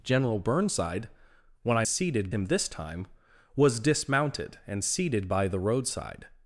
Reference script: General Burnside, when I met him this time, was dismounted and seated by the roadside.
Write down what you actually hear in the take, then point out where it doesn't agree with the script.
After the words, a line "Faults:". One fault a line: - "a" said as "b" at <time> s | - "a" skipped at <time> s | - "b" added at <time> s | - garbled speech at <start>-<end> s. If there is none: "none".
General Burnside, when I seated him this time, was dismounted and seated by the roadside.
Faults:
- "met" said as "seated" at 1.9 s